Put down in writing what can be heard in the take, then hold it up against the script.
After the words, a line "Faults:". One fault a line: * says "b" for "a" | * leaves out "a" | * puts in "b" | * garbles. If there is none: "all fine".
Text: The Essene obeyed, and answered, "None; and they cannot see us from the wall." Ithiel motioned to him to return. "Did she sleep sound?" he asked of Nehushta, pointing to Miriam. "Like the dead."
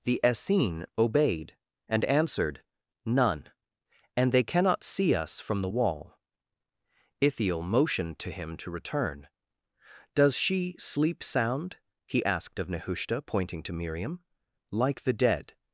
The Essene obeyed, and answered, "None; and they cannot see us from the wall." Ithiel motioned to him to return. "Does she sleep sound?" he asked of Nehushta, pointing to Miriam. "Like the dead."
Faults:
* says "Does" for "Did"